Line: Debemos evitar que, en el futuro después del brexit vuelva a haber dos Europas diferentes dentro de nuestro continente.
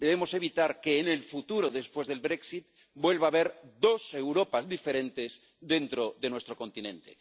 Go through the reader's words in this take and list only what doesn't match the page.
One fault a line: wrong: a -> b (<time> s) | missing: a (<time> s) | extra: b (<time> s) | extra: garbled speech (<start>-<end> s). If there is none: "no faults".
no faults